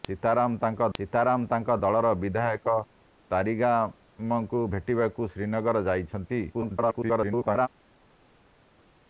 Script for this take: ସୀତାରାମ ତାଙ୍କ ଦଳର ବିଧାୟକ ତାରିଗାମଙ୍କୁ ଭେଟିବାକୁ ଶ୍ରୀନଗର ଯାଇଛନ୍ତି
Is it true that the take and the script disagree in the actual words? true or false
true